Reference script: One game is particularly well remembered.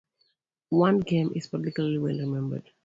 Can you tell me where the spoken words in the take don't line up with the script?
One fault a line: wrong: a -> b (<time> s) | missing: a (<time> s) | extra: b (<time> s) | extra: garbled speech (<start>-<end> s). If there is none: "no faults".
no faults